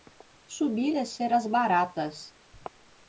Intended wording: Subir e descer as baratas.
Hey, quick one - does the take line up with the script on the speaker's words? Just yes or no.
no